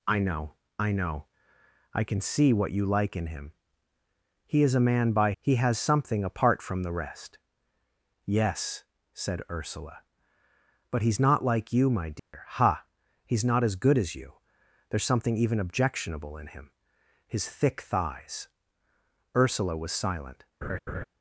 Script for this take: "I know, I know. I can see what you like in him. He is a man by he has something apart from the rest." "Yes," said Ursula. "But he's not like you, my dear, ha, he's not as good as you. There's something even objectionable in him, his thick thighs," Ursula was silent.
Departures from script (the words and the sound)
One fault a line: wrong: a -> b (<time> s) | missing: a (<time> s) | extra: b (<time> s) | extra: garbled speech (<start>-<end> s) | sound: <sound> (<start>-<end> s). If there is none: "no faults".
sound: dropout (12.2-12.3 s)
sound: laugh (20.6-21.0 s)